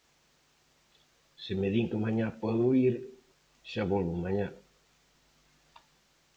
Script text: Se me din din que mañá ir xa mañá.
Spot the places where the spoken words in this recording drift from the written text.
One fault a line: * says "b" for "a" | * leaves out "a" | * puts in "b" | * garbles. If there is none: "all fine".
* leaves out "din"
* puts in "podo"
* puts in "volvo"